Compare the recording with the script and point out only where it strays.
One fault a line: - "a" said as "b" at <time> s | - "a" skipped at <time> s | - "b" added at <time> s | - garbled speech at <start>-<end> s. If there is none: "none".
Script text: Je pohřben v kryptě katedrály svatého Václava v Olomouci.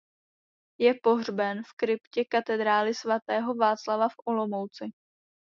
none